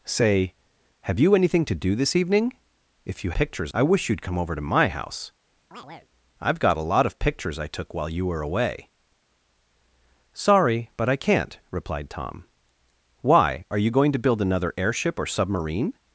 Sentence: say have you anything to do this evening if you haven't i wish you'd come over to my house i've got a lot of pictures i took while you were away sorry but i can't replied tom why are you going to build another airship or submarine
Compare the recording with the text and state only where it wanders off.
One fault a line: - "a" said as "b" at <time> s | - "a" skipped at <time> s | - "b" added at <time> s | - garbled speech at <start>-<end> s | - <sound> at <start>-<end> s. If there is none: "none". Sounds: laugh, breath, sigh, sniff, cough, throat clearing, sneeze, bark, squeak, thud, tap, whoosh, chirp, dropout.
- "haven't" said as "pictures" at 3.3 s
- chirp at 5.7-6.1 s